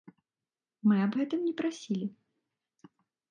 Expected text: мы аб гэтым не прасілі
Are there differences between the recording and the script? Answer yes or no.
no